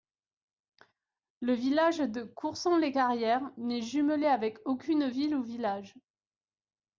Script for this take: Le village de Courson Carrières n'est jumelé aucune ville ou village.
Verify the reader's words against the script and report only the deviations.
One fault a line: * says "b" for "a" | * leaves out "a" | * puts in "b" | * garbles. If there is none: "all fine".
* puts in "les"
* puts in "avec"